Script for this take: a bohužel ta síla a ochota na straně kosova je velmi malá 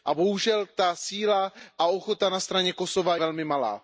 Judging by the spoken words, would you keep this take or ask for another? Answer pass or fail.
fail